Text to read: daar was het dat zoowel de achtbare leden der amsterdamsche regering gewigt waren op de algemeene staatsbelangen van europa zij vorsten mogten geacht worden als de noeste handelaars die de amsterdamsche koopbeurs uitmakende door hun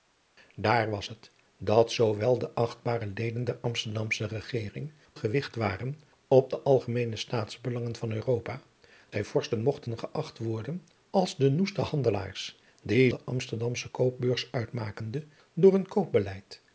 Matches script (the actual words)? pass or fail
pass